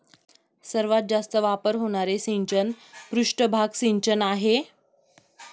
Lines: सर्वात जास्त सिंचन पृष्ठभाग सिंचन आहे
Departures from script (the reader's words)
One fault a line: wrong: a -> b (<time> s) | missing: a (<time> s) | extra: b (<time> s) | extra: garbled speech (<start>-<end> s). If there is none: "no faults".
extra: वापर होणारे (1.4 s)